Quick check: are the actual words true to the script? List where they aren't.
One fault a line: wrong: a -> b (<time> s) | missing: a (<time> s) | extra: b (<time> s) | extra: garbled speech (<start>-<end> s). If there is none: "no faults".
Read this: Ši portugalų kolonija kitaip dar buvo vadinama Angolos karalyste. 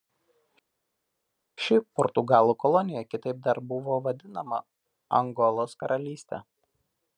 no faults